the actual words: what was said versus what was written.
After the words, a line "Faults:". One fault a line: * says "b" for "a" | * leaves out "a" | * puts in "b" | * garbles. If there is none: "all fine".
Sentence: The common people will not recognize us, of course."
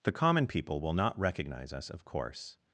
The common people will not recognize us, of course."
Faults:
all fine